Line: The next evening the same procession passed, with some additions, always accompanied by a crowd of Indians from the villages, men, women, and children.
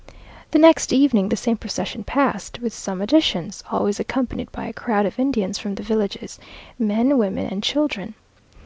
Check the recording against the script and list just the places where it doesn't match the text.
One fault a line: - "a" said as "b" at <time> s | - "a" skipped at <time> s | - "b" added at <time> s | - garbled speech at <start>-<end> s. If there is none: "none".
none